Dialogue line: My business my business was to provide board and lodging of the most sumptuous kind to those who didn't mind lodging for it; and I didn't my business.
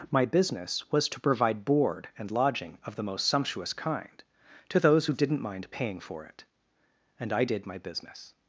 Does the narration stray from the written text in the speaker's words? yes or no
yes